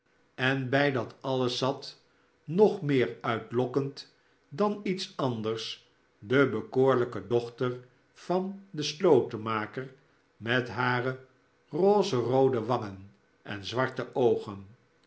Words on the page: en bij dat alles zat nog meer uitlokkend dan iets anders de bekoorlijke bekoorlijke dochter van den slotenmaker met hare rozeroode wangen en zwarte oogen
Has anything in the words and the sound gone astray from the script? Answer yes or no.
yes